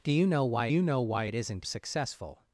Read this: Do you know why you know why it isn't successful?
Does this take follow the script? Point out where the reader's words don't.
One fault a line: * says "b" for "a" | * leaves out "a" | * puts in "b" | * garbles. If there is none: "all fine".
all fine